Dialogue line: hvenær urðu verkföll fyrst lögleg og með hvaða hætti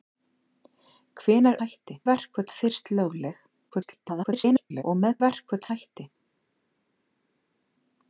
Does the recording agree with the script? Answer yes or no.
no